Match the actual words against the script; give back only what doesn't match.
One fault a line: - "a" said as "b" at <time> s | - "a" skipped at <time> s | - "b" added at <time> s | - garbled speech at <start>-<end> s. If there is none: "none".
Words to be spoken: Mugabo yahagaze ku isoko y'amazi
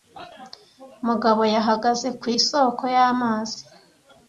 none